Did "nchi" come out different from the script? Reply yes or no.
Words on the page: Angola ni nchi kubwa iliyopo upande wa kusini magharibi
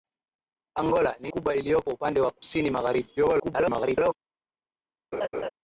yes